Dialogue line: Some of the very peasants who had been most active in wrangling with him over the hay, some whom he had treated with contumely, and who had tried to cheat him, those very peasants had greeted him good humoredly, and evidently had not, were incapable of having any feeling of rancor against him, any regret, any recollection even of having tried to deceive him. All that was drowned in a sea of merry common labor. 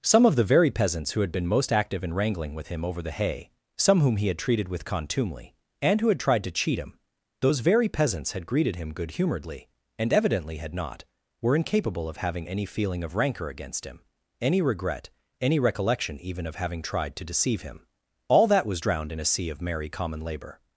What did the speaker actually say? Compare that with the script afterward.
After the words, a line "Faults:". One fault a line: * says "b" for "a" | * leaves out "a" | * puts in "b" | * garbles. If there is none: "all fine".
Some of the very peasants who had been most active in wrangling with him over the hay, some whom he had treated with contumely, and who had tried to cheat him, those very peasants had greeted him good humoredly, and evidently had not, were incapable of having any feeling of rancor against him, any regret, any recollection even of having tried to deceive him. All that was drowned in a sea of merry common labor.
Faults:
all fine